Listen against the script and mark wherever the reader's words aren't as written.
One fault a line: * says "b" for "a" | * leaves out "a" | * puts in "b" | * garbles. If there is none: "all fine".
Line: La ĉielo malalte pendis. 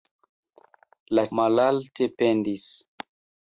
* leaves out "ĉielo"